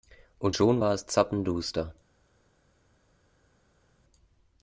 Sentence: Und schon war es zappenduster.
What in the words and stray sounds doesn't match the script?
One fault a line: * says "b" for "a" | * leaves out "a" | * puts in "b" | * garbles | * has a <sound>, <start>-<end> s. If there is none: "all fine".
all fine